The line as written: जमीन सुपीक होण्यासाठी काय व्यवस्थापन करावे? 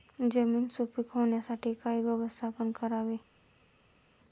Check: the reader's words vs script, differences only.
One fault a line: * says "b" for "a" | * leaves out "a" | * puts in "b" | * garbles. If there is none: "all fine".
all fine